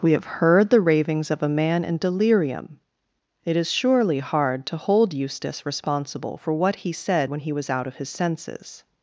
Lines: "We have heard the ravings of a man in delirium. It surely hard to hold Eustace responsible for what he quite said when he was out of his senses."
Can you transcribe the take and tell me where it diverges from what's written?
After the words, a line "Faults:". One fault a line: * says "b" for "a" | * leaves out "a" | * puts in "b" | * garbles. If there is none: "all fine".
"We have heard the ravings of a man in delirium. It is surely hard to hold Eustace responsible for what he said when he was out of his senses."
Faults:
* puts in "is"
* leaves out "quite"